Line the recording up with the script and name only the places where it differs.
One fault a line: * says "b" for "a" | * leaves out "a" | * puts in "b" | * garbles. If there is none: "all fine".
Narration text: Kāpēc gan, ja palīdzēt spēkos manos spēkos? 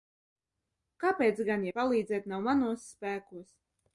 * says "nav" for "spēkos"